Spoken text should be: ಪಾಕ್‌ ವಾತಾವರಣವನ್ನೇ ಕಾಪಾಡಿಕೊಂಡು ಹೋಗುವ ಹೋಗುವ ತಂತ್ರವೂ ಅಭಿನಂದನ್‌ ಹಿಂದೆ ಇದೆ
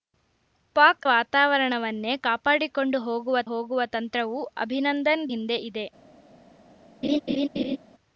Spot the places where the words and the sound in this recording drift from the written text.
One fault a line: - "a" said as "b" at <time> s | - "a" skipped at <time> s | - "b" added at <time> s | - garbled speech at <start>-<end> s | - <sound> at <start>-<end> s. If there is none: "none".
- laugh at 7.0-7.8 s